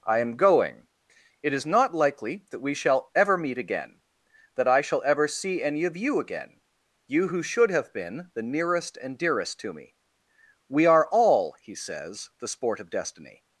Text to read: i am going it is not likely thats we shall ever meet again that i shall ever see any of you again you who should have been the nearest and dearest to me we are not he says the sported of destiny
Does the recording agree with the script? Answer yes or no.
no